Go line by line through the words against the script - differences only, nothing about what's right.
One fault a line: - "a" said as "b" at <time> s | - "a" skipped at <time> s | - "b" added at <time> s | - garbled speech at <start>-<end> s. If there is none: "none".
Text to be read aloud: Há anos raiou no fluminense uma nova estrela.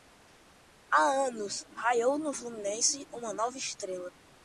none